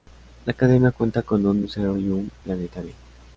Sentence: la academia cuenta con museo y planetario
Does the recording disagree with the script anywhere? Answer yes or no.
yes